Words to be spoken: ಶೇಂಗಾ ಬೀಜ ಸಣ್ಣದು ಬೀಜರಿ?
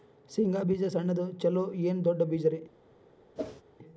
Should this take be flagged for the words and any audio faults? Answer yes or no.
yes